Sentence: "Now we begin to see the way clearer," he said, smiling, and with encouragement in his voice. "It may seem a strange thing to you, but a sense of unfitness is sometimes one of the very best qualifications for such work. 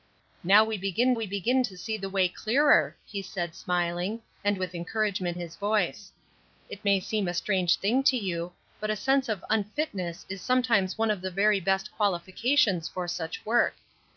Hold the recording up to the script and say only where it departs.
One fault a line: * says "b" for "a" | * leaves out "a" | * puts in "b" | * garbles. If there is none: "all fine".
* puts in "we begin"
* leaves out "in"